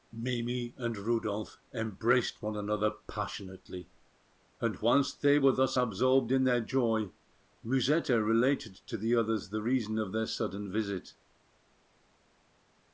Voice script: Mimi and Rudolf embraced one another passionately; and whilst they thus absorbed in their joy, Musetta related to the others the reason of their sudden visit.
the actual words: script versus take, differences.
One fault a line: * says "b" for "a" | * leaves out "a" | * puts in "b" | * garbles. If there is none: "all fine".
* puts in "were"